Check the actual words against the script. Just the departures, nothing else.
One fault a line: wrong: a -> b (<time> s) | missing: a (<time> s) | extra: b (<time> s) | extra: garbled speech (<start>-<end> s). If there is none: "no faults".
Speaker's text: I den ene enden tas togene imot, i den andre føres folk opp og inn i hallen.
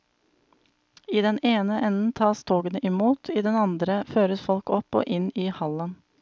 no faults